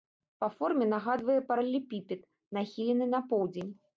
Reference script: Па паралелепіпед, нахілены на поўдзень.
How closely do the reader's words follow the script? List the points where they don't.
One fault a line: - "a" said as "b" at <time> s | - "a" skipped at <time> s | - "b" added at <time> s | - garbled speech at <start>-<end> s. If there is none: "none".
- "форме нагадвае" added at 0.5 s